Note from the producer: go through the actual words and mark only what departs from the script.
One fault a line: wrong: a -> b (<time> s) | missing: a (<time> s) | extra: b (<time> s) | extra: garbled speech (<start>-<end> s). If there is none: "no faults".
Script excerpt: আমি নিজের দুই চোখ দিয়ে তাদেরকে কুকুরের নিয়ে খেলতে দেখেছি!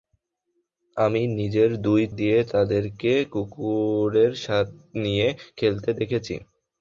missing: চোখ (2.0 s)